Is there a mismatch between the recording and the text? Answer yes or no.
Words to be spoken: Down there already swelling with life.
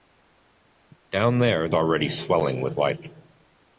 no